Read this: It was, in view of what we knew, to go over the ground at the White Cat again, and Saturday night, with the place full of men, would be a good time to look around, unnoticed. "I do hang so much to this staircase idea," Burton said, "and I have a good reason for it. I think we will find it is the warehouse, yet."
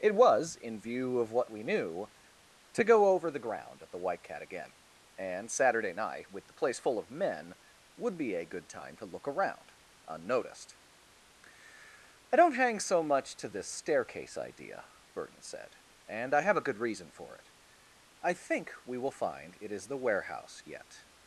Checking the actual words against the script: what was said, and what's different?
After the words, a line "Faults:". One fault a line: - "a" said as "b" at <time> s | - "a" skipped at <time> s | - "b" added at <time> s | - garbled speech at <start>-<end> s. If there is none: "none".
It was, in view of what we knew, to go over the ground at the White Cat again, and Saturday night, with the place full of men, would be a good time to look around, unnoticed. "I don't hang so much to this staircase idea," Burton said, "and I have a good reason for it. I think we will find it is the warehouse, yet."
Faults:
- "do" said as "don't" at 12.4 s